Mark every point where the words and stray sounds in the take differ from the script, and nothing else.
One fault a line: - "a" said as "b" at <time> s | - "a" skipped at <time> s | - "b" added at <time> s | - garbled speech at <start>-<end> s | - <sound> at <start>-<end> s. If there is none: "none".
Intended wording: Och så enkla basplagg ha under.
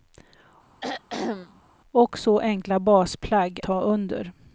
- throat clearing at 0.8-1.6 s